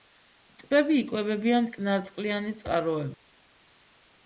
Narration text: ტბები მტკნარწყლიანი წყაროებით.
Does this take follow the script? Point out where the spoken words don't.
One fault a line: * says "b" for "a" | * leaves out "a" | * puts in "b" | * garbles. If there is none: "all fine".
* puts in "იკვებებიან"